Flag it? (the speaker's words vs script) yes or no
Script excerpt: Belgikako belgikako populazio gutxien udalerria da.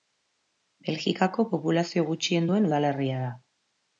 yes